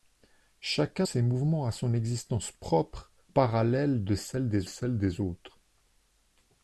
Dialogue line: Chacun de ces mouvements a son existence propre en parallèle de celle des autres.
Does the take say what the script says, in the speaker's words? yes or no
no